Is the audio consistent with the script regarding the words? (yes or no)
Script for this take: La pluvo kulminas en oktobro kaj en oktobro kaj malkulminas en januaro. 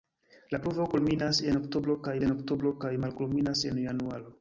yes